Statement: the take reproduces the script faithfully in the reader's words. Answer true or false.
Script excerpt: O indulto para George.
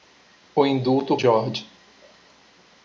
false